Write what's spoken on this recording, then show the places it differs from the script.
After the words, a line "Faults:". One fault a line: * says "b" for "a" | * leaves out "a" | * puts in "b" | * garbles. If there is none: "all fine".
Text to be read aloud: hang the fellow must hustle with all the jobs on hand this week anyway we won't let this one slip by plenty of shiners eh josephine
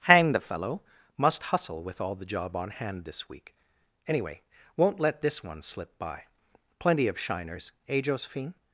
hang the fellow must hustle with all the job on hand this week anyway won't let this one slip by plenty of shiners eh josephine
Faults:
* says "job" for "jobs"
* leaves out "we"